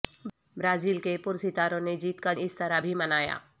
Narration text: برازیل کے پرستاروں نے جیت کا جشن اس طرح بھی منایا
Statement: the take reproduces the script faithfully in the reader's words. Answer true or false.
false